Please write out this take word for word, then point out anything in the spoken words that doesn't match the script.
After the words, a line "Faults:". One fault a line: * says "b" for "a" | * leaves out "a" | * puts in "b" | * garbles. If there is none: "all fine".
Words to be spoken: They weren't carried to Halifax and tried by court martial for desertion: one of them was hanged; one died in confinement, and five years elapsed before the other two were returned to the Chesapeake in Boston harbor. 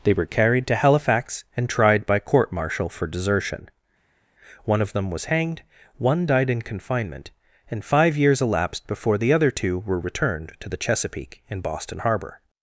They were carried to Halifax and tried by court martial for desertion: one of them was hanged; one died in confinement, and five years elapsed before the other two were returned to the Chesapeake in Boston harbor.
Faults:
* says "were" for "weren't"